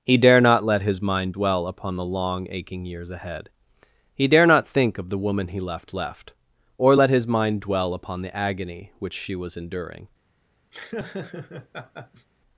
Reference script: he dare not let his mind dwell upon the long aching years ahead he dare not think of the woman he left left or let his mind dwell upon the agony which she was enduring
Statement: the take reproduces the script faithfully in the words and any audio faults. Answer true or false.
false